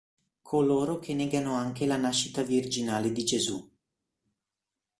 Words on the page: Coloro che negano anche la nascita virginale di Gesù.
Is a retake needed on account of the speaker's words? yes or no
no